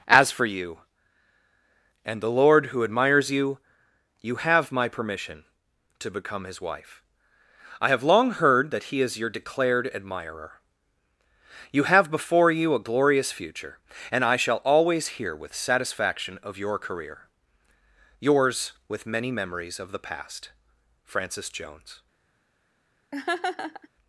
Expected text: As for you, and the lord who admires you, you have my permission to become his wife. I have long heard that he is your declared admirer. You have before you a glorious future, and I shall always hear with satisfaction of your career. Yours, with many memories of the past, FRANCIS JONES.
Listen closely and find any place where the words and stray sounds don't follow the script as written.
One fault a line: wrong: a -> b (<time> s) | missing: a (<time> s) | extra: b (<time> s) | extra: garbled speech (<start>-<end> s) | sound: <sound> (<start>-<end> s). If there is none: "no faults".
sound: laugh (23.1-23.9 s)